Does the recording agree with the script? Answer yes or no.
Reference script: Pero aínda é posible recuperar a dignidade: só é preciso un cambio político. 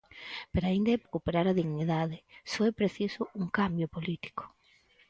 no